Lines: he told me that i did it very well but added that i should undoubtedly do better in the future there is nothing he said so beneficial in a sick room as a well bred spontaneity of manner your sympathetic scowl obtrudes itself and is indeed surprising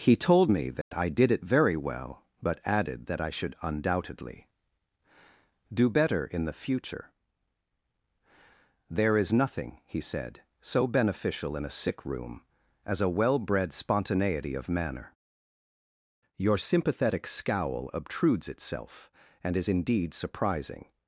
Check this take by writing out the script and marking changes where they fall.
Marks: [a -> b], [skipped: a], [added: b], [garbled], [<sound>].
he told me that [dropout] i did it very well but added that i should undoubtedly do better in the future there is nothing he said so beneficial in a sick room as a well bred spontaneity of manner your sympathetic scowl obtrudes itself and is indeed surprising